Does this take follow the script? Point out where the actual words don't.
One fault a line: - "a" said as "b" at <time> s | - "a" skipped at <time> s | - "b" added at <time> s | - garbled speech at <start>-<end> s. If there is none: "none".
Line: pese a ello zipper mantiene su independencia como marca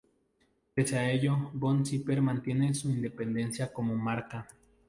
- "von" added at 1.5 s